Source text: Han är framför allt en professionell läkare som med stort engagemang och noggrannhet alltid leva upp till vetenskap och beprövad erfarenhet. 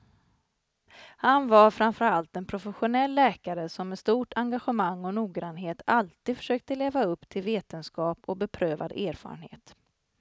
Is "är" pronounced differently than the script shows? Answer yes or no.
yes